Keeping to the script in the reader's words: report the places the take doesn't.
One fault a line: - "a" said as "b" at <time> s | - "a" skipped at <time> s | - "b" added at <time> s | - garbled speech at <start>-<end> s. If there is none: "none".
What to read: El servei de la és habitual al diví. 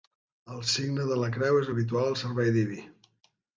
- "servei" said as "signe" at 0.8 s
- "creu" added at 1.4 s
- "servei" added at 2.2 s